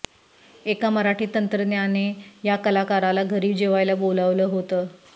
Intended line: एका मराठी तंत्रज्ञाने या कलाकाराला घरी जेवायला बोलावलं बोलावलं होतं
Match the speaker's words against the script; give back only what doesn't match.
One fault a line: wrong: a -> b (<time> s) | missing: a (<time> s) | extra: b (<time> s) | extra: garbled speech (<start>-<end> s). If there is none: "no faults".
missing: बोलावलं (4.4 s)